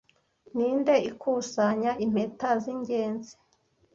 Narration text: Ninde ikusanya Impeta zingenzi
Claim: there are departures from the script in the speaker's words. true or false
false